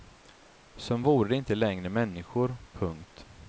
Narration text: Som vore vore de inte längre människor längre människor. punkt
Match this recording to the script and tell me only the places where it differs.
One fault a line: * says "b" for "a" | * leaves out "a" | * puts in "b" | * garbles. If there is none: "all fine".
* leaves out "vore"
* leaves out "längre människor"